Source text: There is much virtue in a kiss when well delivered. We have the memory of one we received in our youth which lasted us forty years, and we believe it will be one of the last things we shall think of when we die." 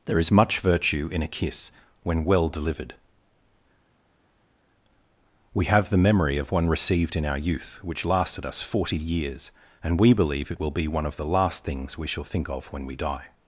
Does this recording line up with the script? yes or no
no